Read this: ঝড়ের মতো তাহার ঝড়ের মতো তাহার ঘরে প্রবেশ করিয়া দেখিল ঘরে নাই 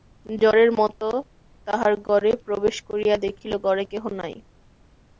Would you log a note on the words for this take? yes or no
yes